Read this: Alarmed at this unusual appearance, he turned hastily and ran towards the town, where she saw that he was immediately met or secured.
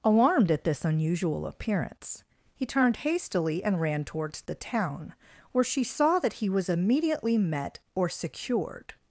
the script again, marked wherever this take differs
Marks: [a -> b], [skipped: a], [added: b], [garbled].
Alarmed at this unusual appearance, he turned hastily and ran towards the town, where she saw that he was immediately met or secured.